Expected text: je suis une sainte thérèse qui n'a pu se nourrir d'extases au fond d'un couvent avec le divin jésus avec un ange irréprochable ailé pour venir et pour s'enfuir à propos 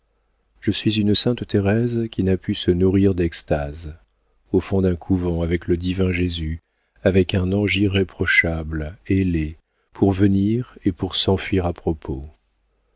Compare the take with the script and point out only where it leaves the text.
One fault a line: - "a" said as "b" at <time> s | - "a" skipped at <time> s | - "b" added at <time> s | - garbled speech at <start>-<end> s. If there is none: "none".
none